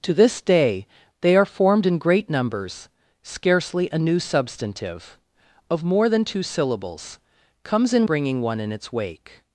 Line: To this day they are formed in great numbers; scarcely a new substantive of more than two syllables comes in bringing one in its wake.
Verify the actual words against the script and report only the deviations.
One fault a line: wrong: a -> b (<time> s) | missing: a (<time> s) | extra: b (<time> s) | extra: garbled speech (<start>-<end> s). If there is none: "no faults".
no faults